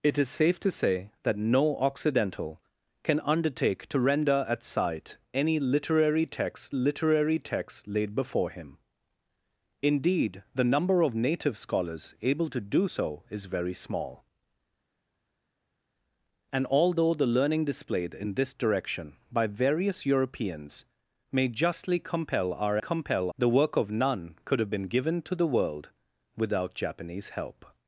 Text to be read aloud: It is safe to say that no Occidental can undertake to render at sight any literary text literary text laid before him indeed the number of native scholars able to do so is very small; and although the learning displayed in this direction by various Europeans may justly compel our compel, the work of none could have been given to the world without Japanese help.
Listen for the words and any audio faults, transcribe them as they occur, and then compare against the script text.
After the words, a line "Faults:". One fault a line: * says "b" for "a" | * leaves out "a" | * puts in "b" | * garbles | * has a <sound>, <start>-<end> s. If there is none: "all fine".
It is safe to say that no Occidental can undertake to render at sight any literary text literary text laid before him indeed the number of native scholars able to do so is very small; and although the learning displayed in this direction by various Europeans may justly compel our compel, the work of none could have been given to the world without Japanese help.
Faults:
all fine